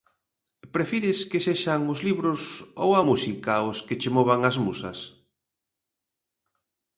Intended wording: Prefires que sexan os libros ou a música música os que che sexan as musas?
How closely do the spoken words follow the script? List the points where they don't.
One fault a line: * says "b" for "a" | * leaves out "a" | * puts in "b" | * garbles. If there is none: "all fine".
* leaves out "música"
* says "movan" for "sexan"